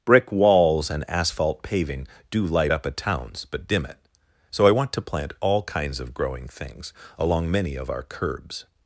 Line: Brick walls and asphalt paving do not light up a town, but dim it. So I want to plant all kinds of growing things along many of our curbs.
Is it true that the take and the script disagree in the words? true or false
true